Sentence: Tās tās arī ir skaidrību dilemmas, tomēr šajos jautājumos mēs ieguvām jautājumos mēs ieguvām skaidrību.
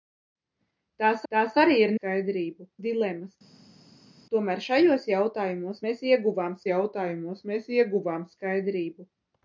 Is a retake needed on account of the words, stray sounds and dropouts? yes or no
no